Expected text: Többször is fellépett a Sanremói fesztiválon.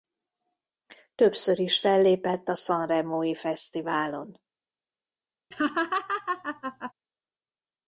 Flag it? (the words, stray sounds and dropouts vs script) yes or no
yes